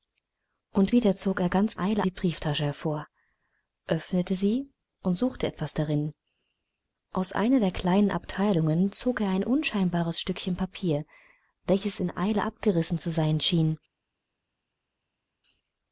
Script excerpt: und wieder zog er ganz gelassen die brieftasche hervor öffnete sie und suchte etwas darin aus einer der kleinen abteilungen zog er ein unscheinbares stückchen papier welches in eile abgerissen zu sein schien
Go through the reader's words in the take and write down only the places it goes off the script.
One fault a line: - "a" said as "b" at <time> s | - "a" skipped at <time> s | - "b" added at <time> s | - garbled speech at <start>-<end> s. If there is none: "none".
- "gelassen" said as "eile" at 1.8 s